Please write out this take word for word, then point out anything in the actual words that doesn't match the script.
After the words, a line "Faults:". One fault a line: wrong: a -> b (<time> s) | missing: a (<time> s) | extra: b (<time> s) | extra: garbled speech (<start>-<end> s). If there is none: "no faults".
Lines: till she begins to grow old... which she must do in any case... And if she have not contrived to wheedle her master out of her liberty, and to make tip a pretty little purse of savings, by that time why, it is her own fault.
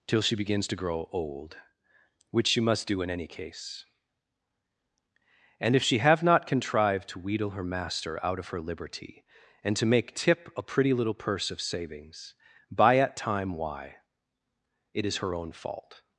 till she begins to grow old... which she must do in any case... And if she have not contrived to wheedle her master out of her liberty, and to make tip a pretty little purse of savings, by at time why, it is her own fault.
Faults:
wrong: that -> at (13.0 s)